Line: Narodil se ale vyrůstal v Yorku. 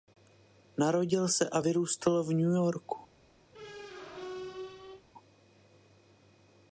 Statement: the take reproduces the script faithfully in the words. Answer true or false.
false